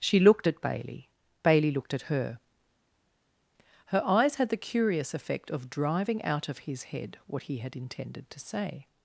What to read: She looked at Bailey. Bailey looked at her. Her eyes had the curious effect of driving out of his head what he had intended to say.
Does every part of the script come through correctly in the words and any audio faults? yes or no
yes